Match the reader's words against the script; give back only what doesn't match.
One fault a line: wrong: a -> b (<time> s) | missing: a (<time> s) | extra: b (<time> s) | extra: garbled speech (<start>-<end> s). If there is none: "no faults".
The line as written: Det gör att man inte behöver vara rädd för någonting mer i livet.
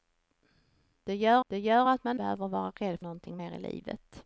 extra: det gör (1.5 s)
missing: inte (2.2 s)
missing: för (3.0 s)